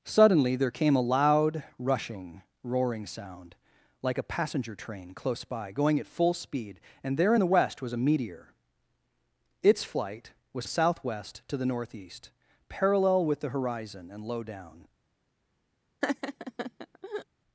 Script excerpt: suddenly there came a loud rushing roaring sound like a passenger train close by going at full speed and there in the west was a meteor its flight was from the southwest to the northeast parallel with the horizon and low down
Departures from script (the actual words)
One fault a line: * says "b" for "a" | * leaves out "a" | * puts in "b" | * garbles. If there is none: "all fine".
* leaves out "from"